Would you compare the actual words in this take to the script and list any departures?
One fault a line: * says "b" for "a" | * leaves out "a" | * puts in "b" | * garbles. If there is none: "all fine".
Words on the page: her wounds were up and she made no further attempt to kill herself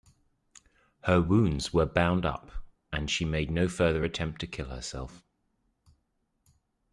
* puts in "bound"